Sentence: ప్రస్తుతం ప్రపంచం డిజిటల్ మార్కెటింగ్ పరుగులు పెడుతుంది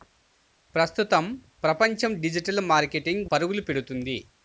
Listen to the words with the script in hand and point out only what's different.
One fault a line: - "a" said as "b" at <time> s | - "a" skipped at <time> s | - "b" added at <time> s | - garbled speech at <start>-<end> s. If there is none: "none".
none